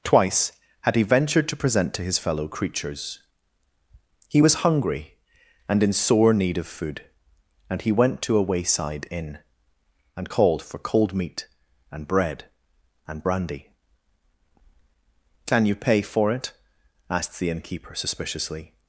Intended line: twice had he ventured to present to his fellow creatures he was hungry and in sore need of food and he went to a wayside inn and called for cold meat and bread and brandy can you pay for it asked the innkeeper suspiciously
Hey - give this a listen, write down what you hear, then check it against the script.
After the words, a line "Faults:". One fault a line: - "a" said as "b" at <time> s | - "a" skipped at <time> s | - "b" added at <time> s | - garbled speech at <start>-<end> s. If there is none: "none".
twice had he ventured to present to his fellow creatures he was hungry and in sore need of food and he went to a wayside inn and called for cold meat and bread and brandy can you pay for it asked the innkeeper suspiciously
Faults:
none